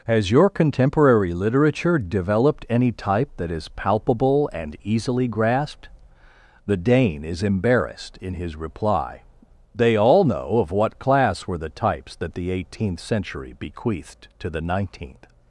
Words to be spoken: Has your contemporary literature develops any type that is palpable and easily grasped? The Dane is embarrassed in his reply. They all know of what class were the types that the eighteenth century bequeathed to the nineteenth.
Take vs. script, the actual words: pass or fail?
fail